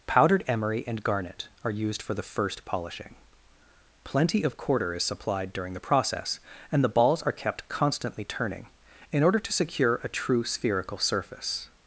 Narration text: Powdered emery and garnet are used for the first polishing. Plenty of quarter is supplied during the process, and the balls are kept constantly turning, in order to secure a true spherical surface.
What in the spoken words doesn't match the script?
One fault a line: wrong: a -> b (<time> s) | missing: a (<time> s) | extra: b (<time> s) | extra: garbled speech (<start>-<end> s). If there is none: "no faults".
no faults